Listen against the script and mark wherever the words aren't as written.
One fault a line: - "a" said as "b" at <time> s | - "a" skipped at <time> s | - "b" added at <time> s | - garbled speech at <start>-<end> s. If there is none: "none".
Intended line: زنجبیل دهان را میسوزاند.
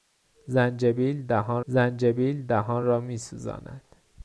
- "زنجبیل دهان" added at 1.7 s